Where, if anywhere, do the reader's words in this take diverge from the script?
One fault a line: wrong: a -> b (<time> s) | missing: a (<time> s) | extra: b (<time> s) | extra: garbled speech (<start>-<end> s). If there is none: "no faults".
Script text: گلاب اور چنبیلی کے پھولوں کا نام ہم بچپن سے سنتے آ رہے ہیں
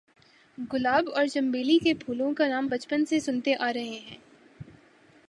missing: ہم (2.7 s)